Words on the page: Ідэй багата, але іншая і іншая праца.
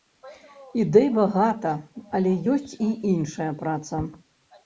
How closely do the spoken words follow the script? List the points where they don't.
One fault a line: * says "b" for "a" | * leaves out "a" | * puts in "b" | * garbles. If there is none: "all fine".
* says "ёсць" for "іншая"